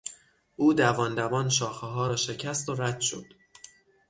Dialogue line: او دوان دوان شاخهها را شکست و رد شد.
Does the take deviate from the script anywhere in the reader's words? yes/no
no